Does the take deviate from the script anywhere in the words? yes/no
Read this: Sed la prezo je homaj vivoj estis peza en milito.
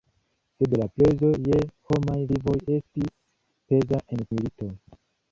no